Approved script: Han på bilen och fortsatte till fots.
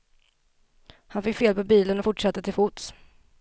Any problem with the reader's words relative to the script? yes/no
yes